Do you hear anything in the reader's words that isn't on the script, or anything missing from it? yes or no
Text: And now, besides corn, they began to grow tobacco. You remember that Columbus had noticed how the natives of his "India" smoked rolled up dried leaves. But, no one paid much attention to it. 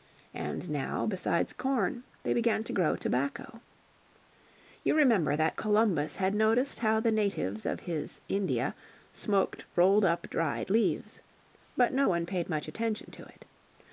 no